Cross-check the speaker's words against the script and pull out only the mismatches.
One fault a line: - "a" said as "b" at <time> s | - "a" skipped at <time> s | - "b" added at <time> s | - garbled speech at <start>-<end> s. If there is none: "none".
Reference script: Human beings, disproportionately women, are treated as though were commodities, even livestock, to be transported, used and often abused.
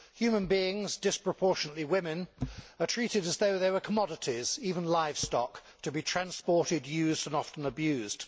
- "they" added at 3.6 s